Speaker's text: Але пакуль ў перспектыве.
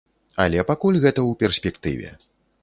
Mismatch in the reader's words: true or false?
true